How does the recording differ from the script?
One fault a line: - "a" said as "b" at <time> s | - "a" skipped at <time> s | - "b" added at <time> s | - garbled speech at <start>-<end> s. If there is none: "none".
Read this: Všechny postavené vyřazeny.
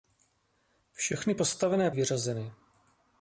none